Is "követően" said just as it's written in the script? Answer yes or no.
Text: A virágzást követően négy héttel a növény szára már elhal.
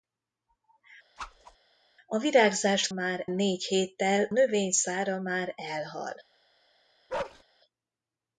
no